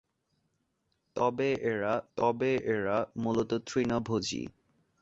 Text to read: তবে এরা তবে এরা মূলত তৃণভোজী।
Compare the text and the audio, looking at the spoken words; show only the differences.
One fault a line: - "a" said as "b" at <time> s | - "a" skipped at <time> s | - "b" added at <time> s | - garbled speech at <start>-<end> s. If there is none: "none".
none